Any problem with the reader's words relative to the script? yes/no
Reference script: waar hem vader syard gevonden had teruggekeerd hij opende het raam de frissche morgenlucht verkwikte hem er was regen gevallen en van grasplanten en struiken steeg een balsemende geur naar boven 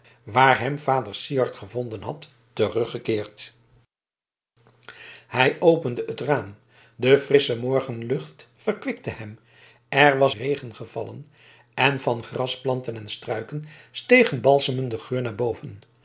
no